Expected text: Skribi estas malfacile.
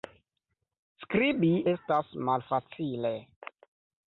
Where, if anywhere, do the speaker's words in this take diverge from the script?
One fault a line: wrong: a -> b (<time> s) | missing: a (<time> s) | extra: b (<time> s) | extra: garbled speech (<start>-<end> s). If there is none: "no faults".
no faults